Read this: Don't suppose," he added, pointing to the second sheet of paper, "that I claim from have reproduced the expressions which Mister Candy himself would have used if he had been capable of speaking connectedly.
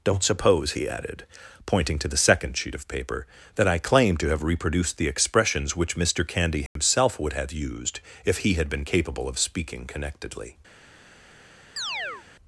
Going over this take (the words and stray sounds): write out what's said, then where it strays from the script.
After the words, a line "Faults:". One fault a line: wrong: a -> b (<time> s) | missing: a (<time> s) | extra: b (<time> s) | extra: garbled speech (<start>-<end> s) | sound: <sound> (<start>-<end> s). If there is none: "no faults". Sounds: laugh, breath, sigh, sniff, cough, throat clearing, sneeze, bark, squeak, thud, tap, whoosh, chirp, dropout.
Don't suppose," he added, pointing to the second sheet of paper, "that I claim to have reproduced the expressions which Mister Candy himself would have used if he had been capable of speaking connectedly.
Faults:
wrong: from -> to (4.2 s)
sound: dropout (6.7-6.8 s)
sound: chirp (11.8-12.3 s)